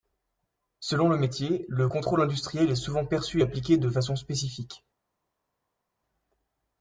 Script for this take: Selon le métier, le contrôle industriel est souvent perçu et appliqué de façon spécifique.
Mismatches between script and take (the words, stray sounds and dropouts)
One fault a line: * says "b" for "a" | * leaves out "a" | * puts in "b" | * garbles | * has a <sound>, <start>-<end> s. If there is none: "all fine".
all fine